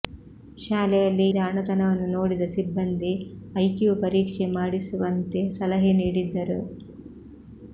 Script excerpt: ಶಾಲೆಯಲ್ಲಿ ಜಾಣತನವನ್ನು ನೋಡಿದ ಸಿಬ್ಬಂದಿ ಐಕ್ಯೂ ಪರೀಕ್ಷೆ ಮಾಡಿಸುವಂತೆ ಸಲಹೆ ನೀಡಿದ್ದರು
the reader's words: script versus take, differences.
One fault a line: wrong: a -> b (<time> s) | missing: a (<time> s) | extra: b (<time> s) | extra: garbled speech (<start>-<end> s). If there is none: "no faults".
no faults